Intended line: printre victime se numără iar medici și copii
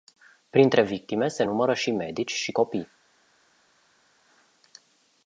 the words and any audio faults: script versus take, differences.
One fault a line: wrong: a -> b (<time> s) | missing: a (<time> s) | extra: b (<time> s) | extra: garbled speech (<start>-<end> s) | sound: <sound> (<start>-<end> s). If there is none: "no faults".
wrong: iar -> și (1.7 s)